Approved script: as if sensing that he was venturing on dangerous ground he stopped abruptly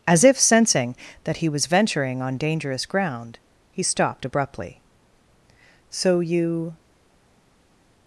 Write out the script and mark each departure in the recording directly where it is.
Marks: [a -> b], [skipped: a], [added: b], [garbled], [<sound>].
as if sensing that he was venturing on dangerous ground he stopped abruptly [added: so you]